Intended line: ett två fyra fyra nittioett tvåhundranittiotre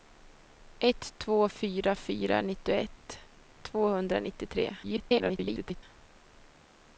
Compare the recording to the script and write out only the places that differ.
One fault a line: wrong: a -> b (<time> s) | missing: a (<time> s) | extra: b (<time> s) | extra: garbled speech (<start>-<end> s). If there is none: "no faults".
extra: garbled speech (4.8-5.8 s)